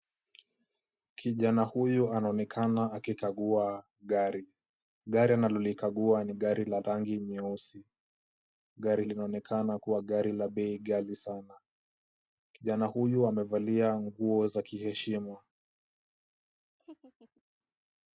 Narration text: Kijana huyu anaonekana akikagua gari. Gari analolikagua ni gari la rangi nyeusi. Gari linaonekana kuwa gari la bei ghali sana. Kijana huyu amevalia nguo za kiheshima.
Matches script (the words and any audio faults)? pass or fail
fail